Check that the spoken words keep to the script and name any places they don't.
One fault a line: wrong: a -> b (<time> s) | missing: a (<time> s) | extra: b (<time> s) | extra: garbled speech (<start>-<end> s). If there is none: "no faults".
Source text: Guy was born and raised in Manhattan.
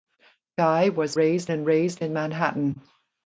wrong: born -> raised (1.2 s)